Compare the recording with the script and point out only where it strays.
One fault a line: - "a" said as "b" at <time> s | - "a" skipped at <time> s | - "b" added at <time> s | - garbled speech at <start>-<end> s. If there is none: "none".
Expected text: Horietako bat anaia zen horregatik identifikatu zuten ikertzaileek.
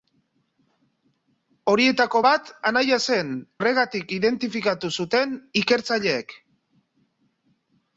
none